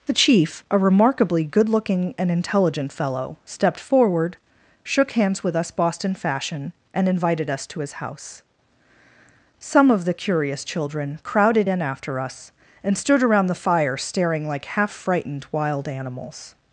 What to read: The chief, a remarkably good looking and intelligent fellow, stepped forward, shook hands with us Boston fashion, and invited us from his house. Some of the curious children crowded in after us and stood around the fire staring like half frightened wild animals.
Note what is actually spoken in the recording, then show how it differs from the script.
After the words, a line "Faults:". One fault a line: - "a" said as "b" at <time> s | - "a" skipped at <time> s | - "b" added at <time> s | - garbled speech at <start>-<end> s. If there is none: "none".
The chief, a remarkably good looking and intelligent fellow, stepped forward, shook hands with us Boston fashion, and invited us to his house. Some of the curious children crowded in after us and stood around the fire staring like half frightened wild animals.
Faults:
- "from" said as "to" at 7.7 s